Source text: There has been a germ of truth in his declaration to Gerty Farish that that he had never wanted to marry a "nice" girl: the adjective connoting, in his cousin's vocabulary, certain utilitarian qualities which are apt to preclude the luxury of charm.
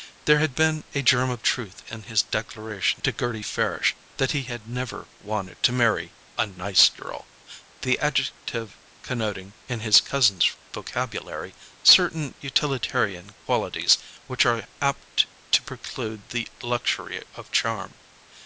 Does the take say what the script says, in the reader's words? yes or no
no